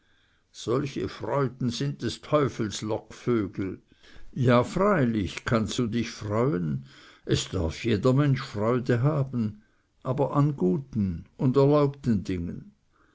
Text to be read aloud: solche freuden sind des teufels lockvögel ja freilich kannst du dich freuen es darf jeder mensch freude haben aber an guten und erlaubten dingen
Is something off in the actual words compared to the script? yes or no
no